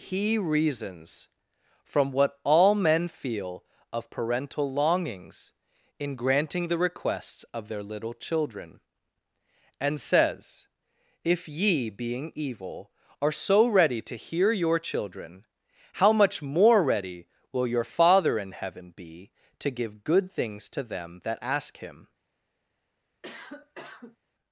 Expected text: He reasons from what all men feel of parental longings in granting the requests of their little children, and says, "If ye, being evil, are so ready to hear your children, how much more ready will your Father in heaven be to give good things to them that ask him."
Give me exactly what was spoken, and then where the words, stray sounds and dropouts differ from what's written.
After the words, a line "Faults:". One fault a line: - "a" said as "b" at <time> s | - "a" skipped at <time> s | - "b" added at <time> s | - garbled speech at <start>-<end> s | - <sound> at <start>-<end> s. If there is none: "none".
He reasons from what all men feel of parental longings in granting the requests of their little children, and says, "If ye, being evil, are so ready to hear your children, how much more ready will your Father in heaven be to give good things to them that ask him."
Faults:
- cough at 23.2-24.2 s